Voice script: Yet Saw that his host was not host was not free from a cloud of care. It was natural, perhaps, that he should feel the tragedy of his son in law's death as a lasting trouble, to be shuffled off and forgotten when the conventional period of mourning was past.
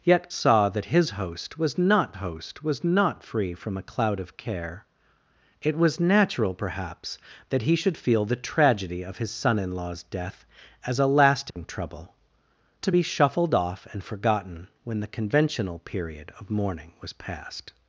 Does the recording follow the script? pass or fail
pass